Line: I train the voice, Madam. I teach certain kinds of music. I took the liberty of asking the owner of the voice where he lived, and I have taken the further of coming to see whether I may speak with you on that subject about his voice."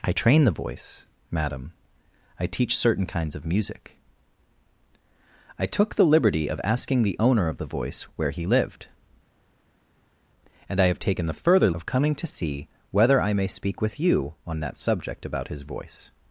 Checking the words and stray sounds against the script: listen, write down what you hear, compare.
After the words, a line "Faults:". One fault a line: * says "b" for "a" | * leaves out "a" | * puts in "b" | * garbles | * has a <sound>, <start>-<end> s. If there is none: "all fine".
I train the voice, Madam. I teach certain kinds of music. I took the liberty of asking the owner of the voice where he lived, and I have taken the further of coming to see whether I may speak with you on that subject about his voice."
Faults:
all fine